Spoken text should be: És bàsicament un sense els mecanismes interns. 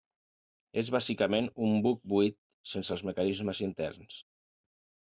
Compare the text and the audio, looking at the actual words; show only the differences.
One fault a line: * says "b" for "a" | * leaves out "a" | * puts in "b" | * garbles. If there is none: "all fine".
* puts in "buc buit"